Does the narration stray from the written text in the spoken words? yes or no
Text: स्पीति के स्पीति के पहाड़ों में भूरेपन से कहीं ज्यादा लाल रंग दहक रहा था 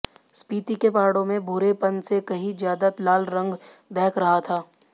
yes